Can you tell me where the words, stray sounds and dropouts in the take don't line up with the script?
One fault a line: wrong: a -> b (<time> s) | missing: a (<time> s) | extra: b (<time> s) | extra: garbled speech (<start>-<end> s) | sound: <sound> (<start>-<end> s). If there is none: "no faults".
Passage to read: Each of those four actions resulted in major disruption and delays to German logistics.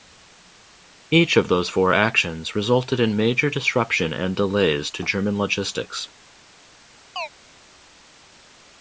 sound: chirp (7.2-7.3 s)